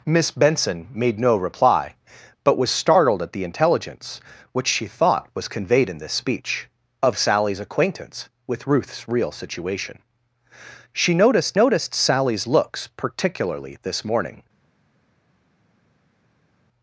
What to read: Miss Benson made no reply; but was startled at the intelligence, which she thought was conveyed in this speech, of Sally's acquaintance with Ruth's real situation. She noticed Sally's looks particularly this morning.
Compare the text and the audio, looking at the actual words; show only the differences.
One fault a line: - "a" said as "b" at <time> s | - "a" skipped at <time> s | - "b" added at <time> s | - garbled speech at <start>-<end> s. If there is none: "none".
- "noticed" added at 11.5 s